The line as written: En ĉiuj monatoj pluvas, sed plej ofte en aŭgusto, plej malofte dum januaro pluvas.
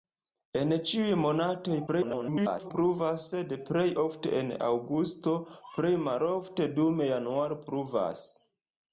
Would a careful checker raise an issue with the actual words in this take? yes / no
yes